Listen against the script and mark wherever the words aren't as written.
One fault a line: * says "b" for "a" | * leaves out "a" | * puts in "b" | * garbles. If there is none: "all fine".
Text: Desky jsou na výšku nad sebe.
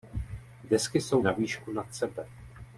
all fine